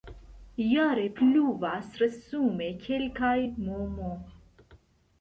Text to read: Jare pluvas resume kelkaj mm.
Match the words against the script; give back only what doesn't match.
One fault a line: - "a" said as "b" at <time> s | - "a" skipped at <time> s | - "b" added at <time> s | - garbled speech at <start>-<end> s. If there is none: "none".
none